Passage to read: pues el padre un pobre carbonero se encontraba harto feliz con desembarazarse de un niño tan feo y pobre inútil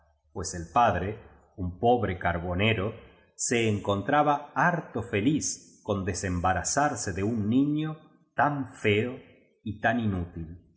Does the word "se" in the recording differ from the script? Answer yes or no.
no